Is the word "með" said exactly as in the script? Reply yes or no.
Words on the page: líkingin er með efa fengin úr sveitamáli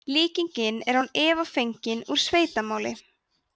no